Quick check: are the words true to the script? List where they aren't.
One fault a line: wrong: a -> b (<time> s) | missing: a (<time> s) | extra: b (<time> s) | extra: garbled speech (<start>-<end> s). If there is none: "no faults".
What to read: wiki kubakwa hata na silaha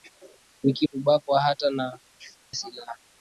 no faults